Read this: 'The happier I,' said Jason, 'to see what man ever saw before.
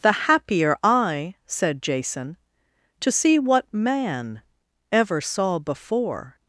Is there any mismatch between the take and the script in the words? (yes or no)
no